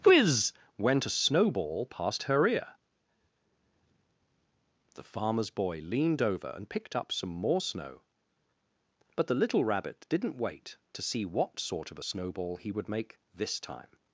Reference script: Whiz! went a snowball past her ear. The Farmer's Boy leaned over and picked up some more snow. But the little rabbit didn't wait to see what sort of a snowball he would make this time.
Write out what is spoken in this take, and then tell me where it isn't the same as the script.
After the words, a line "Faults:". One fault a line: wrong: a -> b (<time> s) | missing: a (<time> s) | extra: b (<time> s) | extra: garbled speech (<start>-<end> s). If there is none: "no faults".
Whiz! went a snowball past her ear. The Farmer's Boy leaned over and picked up some more snow. But the little rabbit didn't wait to see what sort of a snowball he would make this time.
Faults:
no faults